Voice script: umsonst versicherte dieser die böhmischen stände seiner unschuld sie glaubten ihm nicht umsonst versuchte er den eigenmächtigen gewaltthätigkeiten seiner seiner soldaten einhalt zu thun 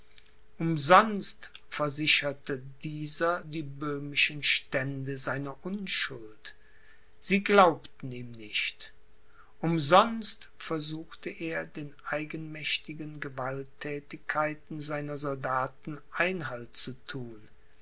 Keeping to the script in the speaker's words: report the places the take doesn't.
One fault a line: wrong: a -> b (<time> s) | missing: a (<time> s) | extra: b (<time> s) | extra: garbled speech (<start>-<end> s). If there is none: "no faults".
missing: seiner (15.2 s)